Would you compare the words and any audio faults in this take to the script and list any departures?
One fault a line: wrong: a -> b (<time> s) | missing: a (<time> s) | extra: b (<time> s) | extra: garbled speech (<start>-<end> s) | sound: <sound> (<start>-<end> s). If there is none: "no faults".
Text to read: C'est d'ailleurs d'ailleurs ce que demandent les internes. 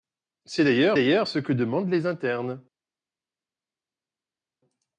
no faults